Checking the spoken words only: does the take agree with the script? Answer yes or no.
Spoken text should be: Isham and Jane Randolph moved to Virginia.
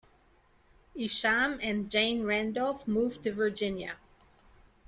yes